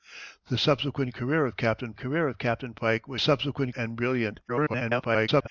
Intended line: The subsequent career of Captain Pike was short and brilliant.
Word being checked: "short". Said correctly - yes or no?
no